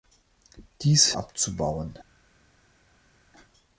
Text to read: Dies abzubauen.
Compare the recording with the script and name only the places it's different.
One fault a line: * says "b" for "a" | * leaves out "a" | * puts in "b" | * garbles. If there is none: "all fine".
all fine